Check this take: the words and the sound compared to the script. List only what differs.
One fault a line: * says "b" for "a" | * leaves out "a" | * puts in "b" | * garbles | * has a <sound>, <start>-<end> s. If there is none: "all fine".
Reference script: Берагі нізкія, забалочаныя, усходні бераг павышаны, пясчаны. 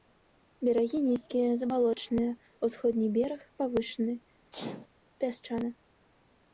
* has a sneeze, 4.5-4.9 s